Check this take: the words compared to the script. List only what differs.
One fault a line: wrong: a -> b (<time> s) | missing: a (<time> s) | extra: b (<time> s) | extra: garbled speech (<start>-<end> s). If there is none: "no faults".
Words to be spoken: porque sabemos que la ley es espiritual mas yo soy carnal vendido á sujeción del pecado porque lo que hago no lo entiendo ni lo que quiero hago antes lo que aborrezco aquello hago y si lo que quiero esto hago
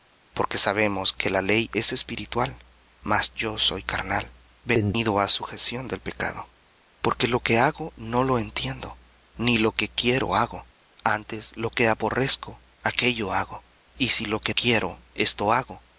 no faults